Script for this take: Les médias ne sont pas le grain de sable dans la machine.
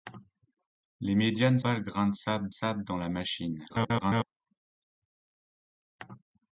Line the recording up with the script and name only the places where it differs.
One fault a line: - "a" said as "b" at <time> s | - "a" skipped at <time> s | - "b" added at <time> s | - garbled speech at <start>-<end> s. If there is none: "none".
- "sont" skipped at 1.6 s
- "sable" added at 2.5 s
- garbled speech at 3.7-4.2 s